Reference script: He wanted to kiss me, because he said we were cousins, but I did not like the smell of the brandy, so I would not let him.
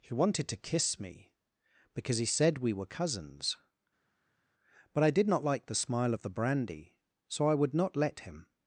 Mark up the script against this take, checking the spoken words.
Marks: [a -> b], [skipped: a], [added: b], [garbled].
He wanted to kiss me, because he said we were cousins, but I did not like the [smell -> smile] of the brandy, so I would not let him.